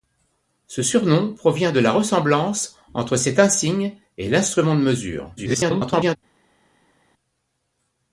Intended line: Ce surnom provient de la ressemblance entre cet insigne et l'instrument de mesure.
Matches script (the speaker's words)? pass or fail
fail